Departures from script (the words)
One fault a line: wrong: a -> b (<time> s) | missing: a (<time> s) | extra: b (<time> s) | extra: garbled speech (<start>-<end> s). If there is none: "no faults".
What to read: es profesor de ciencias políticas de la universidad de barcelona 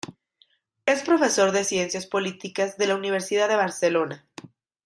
no faults